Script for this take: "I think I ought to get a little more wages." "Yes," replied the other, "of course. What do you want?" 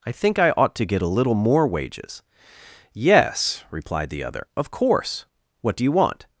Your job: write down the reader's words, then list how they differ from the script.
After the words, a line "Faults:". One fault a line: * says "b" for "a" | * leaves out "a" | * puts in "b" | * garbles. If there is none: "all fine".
"I think I ought to get a little more wages." "Yes," replied the other, "of course. What do you want?"
Faults:
all fine